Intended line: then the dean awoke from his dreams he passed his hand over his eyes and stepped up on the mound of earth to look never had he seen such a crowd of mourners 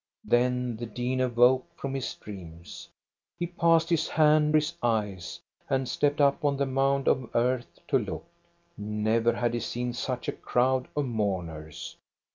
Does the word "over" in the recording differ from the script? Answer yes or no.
yes